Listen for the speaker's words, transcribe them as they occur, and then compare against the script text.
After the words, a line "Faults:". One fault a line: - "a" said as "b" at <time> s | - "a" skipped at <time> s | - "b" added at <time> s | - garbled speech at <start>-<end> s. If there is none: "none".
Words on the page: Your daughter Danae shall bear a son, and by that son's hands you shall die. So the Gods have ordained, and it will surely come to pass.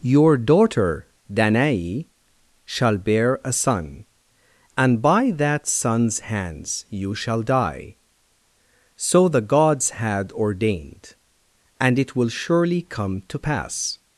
Your daughter Danae shall bear a son, and by that son's hands you shall die. So the Gods had ordained, and it will surely come to pass.
Faults:
- "have" said as "had" at 9.9 s